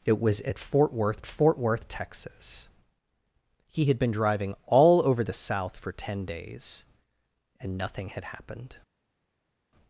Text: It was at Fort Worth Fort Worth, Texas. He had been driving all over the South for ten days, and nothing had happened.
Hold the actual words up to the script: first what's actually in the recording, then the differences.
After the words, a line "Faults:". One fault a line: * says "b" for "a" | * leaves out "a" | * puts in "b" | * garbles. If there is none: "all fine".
It was at Fort Worth Fort Worth, Texas. He had been driving all over the South for ten days, and nothing had happened.
Faults:
all fine